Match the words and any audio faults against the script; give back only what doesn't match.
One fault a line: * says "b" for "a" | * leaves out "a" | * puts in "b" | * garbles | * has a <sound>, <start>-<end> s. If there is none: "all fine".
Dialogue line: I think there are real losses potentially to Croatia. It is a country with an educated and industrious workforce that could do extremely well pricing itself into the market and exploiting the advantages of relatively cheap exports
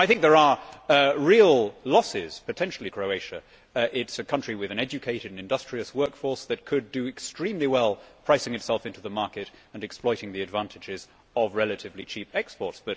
* leaves out "to"